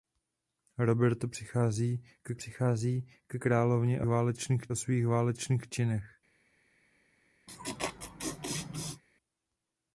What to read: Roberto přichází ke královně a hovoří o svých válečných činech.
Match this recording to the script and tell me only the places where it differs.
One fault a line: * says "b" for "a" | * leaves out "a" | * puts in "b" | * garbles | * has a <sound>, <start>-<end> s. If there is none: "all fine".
* puts in "přichází ke"
* says "válečných" for "hovoří"
* has a laugh, 7.5-9.0 s